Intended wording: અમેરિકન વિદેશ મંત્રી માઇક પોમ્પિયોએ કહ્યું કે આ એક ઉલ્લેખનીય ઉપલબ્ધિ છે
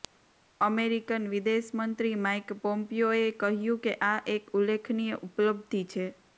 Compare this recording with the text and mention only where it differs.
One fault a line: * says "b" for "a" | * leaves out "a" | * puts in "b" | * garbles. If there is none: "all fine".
all fine